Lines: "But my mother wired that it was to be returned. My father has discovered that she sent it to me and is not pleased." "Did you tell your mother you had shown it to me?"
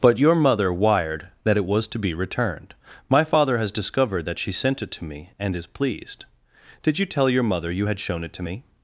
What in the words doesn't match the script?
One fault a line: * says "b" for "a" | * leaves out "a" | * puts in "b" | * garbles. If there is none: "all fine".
* says "your" for "my"
* leaves out "not"